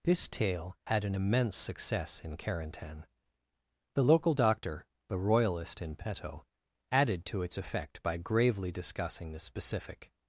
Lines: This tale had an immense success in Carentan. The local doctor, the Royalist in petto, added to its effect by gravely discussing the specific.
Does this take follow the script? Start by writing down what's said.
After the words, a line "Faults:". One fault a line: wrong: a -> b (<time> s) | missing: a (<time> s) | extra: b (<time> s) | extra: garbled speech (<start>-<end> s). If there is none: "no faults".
This tale had an immense success in Carentan. The local doctor, the Royalist in petto, added to its effect by gravely discussing the specific.
Faults:
no faults